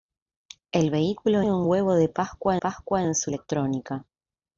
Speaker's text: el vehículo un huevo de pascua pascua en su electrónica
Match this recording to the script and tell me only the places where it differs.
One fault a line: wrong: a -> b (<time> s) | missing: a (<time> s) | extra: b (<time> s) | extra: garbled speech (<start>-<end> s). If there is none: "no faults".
no faults